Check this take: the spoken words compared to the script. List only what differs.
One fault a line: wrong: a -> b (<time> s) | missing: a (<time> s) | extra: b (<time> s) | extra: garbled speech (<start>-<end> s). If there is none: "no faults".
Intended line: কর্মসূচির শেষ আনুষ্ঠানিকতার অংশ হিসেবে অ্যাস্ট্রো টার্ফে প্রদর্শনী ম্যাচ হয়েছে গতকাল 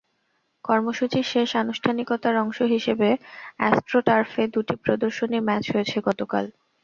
extra: দুটি (4.5 s)